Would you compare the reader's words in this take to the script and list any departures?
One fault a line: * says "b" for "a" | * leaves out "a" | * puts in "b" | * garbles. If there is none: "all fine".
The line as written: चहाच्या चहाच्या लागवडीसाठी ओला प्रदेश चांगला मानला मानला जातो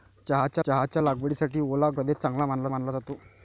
all fine